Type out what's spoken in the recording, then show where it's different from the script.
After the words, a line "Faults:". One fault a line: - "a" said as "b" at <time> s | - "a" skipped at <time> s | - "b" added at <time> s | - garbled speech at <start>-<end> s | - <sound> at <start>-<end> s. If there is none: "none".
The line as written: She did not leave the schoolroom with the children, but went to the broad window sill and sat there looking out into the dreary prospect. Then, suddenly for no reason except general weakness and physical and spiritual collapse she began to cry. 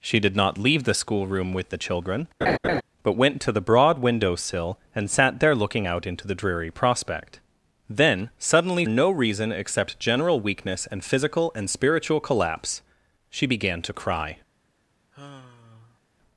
She did not leave the schoolroom with the children, but went to the broad window sill and sat there looking out into the dreary prospect. Then, suddenly no reason except general weakness and physical and spiritual collapse she began to cry.
Faults:
- laugh at 2.4-2.8 s
- "for" skipped at 8.8 s
- sigh at 15.1-16.0 s